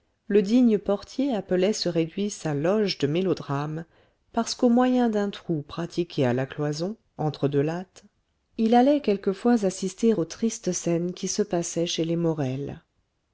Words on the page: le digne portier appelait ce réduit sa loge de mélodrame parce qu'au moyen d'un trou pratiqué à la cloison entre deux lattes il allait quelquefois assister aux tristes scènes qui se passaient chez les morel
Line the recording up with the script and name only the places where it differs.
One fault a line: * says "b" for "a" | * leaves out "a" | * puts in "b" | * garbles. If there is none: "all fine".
all fine